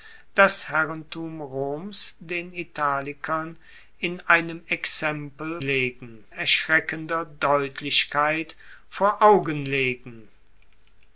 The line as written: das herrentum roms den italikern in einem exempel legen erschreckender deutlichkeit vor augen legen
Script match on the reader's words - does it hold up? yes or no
yes